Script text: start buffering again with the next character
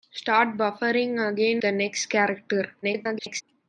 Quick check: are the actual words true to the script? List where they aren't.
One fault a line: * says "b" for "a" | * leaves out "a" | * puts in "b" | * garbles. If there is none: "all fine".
* leaves out "with"
* garbles